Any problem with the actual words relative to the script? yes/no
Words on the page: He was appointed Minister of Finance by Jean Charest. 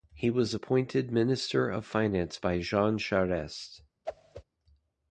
no